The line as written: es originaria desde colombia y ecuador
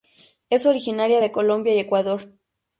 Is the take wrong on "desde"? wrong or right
wrong